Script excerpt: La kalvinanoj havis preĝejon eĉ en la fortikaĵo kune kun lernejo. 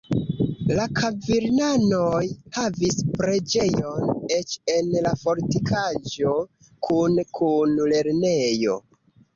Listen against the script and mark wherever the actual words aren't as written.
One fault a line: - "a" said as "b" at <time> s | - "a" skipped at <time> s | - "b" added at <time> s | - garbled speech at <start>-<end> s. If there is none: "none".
none